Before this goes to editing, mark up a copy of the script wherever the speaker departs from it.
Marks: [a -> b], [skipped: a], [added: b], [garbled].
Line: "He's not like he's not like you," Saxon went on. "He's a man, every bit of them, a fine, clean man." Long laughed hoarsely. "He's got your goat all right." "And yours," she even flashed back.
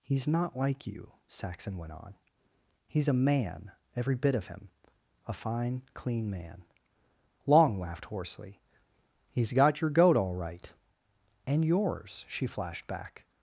"He's not like [skipped: he's not like] you," Saxon went on. "He's a man, every bit of [them, -> him] a fine, clean man." Long laughed hoarsely. "He's got your goat all right." "And yours," she [skipped: even] flashed back.